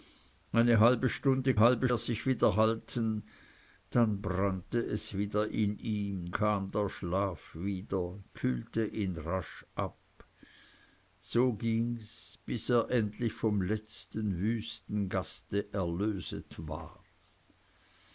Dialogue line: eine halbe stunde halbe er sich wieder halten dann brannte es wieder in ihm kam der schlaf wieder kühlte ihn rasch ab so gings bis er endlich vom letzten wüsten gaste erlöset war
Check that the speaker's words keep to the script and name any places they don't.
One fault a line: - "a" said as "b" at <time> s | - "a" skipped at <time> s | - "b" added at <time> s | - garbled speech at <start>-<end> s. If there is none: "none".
none